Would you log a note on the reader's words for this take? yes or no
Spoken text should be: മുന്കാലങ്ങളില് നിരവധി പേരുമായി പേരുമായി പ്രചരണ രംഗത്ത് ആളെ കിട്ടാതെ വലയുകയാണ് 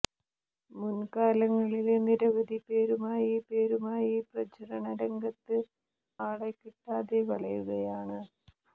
no